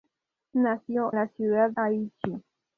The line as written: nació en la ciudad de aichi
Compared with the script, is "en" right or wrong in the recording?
wrong